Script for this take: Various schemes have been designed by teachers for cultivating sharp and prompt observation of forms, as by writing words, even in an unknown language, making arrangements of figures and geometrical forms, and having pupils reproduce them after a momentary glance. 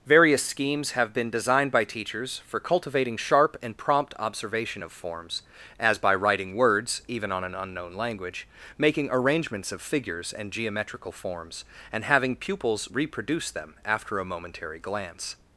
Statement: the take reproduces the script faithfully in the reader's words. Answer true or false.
false